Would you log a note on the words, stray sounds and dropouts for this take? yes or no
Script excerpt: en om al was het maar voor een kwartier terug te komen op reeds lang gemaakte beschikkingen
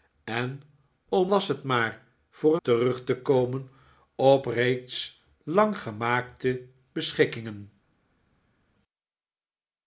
yes